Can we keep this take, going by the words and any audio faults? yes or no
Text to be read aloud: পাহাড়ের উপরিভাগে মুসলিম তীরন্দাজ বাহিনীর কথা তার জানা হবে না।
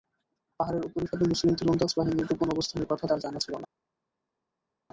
no